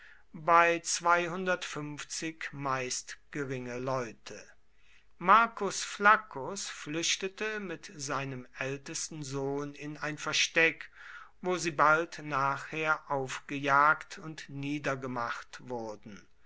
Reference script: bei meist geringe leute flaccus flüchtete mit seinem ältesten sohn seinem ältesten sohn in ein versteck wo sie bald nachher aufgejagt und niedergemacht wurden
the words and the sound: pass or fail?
fail